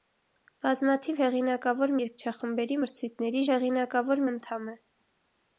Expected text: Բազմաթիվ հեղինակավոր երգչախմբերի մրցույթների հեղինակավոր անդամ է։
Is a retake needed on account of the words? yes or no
no